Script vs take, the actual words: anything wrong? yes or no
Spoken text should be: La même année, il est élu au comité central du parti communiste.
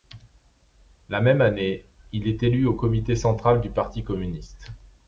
no